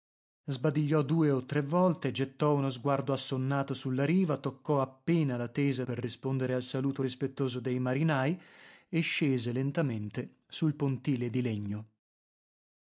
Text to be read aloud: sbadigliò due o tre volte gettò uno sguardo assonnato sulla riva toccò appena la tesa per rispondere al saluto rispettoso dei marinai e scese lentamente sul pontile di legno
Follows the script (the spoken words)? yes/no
yes